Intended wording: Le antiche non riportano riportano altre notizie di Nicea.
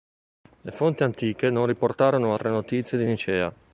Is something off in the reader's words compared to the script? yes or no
yes